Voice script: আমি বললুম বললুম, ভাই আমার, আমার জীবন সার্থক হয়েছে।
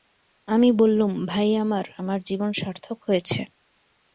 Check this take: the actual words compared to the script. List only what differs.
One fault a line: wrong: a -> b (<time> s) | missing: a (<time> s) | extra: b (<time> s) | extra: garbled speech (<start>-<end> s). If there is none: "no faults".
missing: বললুম (1.1 s)